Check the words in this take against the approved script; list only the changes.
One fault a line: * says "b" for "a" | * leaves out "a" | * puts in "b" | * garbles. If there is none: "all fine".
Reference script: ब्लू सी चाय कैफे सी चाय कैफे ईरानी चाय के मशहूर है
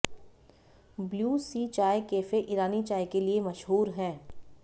* leaves out "सी चाय कैफे"
* puts in "लिए"